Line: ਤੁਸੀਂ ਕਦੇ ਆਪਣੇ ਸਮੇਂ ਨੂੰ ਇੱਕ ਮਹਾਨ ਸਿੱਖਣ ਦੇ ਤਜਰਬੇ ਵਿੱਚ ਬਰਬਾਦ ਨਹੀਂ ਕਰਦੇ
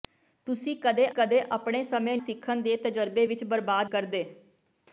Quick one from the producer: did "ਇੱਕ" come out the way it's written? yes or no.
no